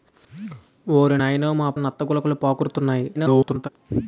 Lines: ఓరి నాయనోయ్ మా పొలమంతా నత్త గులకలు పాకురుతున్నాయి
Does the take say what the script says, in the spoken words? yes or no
no